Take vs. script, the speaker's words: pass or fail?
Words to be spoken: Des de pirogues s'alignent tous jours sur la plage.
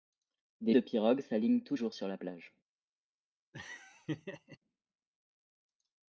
pass